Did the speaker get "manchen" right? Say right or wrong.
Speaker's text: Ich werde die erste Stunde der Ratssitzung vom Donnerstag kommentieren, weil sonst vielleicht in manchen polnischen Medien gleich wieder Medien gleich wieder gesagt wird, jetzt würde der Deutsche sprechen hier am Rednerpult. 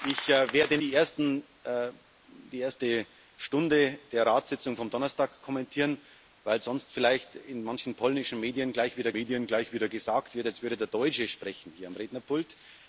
right